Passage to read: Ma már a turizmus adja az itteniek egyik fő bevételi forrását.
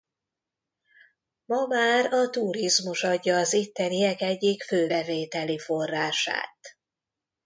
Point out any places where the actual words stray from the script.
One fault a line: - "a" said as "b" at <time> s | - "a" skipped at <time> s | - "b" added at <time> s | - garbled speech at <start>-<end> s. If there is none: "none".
none